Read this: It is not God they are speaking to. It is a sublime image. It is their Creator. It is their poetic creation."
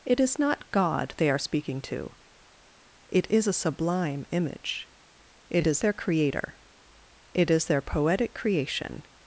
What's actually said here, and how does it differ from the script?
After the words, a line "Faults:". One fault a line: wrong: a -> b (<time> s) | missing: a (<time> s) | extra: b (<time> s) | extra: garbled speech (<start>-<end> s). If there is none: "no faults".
It is not God they are speaking to. It is a sublime image. It is their Creator. It is their poetic creation."
Faults:
no faults